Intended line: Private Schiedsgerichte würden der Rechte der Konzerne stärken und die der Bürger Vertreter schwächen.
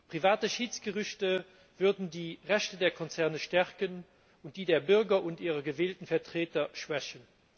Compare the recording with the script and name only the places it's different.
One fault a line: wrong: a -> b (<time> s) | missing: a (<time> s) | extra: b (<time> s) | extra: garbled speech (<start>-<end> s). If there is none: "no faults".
wrong: der -> die (2.1 s)
extra: und ihrer gewählten (5.2 s)